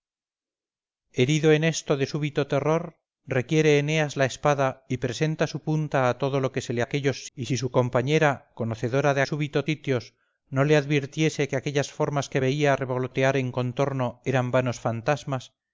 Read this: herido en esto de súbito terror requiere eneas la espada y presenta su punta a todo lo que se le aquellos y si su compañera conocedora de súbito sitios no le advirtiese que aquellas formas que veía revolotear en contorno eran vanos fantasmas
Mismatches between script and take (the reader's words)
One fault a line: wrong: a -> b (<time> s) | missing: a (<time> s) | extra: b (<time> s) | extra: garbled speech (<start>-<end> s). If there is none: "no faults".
no faults